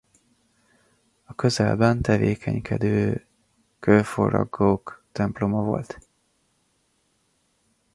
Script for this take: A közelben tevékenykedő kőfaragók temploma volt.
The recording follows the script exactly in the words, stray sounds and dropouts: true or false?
true